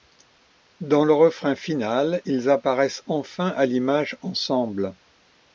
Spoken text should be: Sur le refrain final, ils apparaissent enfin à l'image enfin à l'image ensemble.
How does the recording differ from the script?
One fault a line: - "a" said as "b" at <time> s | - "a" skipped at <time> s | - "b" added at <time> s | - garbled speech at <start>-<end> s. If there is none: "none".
- "Sur" said as "Dans" at 0.8 s
- "enfin à l'image" skipped at 4.2 s